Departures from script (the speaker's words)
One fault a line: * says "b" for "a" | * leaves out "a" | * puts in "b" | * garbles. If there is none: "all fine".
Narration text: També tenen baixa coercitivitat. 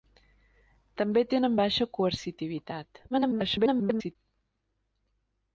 * garbles